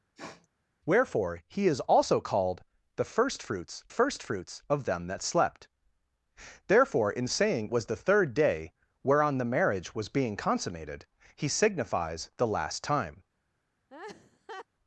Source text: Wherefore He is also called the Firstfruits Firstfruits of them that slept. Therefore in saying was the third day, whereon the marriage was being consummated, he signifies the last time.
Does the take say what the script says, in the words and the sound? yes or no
no